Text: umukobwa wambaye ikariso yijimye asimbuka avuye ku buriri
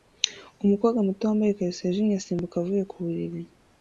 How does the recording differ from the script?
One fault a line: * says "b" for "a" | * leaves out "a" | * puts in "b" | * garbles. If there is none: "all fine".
* puts in "muto"